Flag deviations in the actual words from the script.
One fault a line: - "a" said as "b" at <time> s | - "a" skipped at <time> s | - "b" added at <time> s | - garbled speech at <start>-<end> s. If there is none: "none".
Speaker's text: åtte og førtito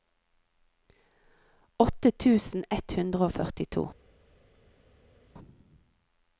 - "tusen ett hundre" added at 2.2 s